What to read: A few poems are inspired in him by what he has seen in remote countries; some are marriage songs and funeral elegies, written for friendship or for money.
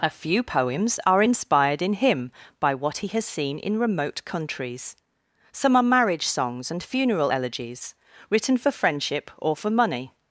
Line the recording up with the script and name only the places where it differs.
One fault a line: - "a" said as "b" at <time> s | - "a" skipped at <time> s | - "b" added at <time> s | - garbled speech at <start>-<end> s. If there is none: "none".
none